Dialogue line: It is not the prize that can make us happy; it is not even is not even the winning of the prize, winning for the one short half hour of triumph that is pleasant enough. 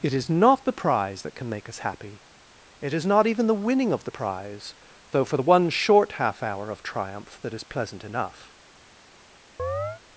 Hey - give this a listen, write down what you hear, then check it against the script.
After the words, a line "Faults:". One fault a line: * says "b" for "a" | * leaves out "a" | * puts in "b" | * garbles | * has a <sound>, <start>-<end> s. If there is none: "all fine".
It is not the prize that can make us happy; it is not even the winning of the prize, though for the one short half hour of triumph that is pleasant enough.
Faults:
* leaves out "is not even"
* says "though" for "winning"
* has a chirp, 9.6-10.0 s